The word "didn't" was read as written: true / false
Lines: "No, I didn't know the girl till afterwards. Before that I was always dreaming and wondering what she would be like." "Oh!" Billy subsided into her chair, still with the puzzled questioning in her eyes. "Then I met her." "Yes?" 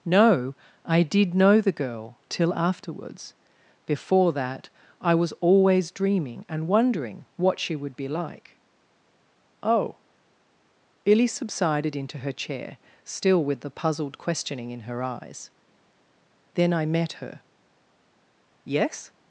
false